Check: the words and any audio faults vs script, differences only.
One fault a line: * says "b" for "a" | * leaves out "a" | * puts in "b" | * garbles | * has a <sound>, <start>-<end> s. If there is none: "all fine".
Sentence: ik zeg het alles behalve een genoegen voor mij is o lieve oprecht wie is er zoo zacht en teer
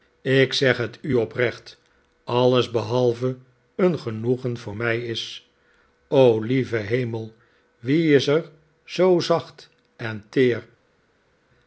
* puts in "u oprecht"
* says "hemel" for "oprecht"